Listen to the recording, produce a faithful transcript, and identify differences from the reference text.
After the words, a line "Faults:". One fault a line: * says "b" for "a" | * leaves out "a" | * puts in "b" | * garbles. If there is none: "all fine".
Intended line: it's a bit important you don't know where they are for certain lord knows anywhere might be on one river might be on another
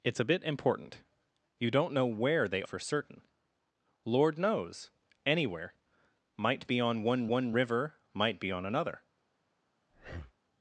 it's a bit important you don't know where they for certain lord knows anywhere might be on one one river might be on another
Faults:
* leaves out "are"
* puts in "one"